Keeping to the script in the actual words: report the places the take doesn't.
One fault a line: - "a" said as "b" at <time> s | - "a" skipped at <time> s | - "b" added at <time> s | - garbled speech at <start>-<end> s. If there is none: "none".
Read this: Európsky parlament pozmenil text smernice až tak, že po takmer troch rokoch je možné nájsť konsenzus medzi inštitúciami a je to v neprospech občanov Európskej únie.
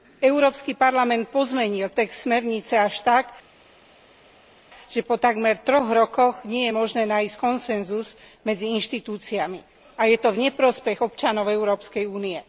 - "nie" added at 6.5 s